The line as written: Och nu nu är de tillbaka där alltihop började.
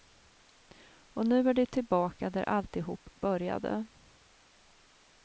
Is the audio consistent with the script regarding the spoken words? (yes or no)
no